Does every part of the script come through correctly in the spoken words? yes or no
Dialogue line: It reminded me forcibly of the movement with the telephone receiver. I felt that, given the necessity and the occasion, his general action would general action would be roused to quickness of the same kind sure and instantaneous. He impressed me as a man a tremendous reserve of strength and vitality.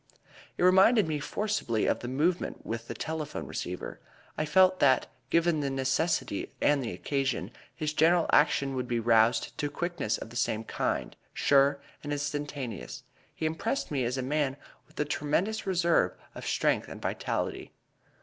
no